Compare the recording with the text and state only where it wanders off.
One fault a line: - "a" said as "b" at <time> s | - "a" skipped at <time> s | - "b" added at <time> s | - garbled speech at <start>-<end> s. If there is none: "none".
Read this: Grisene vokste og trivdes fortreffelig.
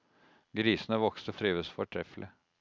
none